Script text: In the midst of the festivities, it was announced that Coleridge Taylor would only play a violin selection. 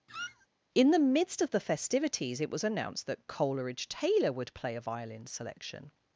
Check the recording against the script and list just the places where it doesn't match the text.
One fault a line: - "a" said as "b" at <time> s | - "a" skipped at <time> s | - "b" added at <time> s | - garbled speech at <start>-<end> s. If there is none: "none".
- "only" skipped at 4.5 s